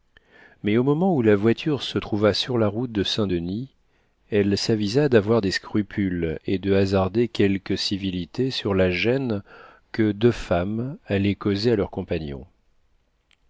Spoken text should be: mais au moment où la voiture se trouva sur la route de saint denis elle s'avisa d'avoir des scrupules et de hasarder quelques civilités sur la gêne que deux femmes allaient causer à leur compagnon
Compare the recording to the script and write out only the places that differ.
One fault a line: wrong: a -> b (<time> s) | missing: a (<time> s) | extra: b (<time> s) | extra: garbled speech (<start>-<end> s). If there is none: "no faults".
no faults